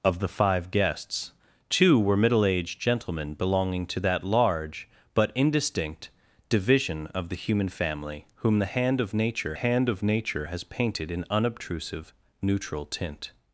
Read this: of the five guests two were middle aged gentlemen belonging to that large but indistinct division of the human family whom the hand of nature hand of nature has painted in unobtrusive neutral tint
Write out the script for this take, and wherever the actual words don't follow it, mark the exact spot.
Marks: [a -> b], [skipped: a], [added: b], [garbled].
of the five guests two were middle aged gentlemen belonging to that large but indistinct division of the human family whom the hand of nature hand of nature has painted in unobtrusive neutral tint